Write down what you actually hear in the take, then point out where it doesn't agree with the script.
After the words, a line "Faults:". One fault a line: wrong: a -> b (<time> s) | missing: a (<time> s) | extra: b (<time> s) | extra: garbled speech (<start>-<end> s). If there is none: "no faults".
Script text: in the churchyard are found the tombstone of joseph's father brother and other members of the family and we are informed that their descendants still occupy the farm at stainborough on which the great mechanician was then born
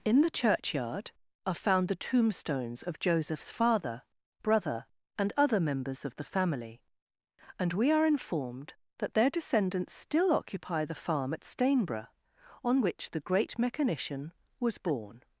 in the churchyard are found the tombstones of joseph's father brother and other members of the family and we are informed that their descendants still occupy the farm at stainborough on which the great mechanician was born
Faults:
wrong: tombstone -> tombstones (2.1 s)
missing: then (14.8 s)